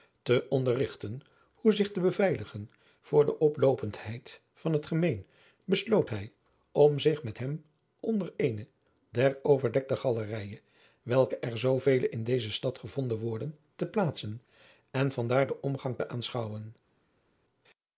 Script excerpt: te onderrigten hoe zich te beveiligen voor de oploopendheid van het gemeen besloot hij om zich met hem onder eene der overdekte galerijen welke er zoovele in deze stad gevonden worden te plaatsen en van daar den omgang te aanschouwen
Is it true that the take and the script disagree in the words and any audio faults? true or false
false